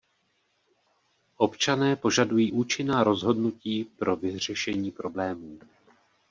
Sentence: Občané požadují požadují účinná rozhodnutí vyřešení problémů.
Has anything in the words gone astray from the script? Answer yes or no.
yes